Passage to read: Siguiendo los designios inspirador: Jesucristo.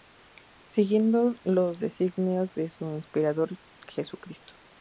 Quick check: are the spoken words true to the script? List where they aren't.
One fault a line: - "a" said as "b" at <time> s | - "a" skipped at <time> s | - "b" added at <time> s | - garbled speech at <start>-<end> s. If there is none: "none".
- "de su" added at 2.5 s